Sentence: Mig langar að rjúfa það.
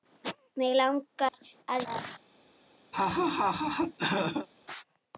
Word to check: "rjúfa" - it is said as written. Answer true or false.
false